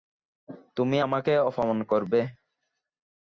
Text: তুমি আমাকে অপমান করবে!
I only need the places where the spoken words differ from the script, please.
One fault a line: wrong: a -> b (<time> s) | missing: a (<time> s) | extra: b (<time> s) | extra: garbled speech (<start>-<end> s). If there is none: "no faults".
no faults